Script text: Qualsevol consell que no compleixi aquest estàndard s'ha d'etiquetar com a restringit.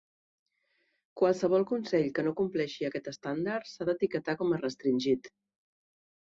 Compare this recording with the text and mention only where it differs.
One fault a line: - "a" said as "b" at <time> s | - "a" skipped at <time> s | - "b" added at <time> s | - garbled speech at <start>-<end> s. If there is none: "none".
none